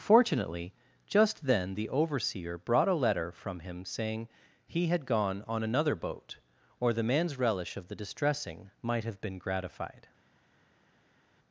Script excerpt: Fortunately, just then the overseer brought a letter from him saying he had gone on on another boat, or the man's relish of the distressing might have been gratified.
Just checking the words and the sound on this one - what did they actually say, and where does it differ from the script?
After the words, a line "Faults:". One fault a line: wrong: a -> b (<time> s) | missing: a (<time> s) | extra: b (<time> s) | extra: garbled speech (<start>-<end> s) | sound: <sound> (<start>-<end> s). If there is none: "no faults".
Fortunately, just then the overseer brought a letter from him saying he had gone on another boat, or the man's relish of the distressing might have been gratified.
Faults:
missing: on (5.6 s)